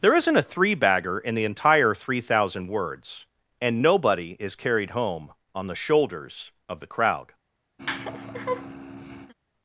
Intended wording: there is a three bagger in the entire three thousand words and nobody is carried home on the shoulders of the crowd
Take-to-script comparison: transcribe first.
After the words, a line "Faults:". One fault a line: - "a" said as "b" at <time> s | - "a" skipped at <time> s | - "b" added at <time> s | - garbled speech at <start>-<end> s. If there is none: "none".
there isn't a three bagger in the entire three thousand words and nobody is carried home on the shoulders of the crowd
Faults:
- "is" said as "isn't" at 0.1 s